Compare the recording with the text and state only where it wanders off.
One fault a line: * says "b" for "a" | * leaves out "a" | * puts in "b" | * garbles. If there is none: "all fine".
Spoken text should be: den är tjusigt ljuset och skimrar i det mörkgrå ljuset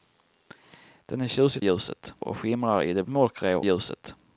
all fine